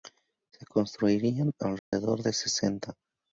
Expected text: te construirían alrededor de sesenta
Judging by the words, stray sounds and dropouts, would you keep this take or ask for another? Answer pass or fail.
fail